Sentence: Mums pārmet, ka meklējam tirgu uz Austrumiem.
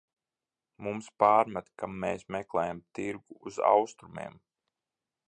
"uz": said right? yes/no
yes